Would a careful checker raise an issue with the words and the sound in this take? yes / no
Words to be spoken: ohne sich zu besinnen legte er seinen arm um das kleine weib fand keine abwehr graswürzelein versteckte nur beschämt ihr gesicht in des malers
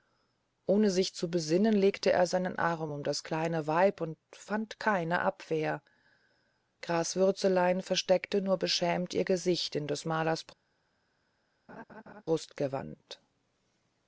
yes